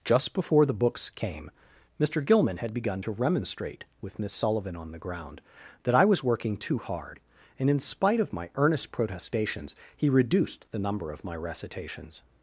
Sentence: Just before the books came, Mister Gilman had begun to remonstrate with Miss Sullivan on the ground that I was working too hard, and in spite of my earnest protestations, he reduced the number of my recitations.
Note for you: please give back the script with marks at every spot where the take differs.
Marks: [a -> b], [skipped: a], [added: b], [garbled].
Just before the books came, Mister Gilman had begun to remonstrate with Miss Sullivan on the ground that I was working too hard, and in spite of my earnest protestations, he reduced the number of my recitations.